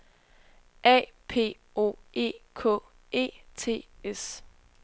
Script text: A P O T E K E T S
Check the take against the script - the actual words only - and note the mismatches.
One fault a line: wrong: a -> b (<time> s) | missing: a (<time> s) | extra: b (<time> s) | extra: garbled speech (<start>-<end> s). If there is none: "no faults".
missing: T (1.9 s)